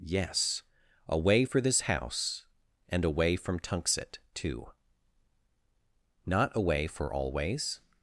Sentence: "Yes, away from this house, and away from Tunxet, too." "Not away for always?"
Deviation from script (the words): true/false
true